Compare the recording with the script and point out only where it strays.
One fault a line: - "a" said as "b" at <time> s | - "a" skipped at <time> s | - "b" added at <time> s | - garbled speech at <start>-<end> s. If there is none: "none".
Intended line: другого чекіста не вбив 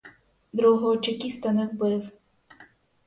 none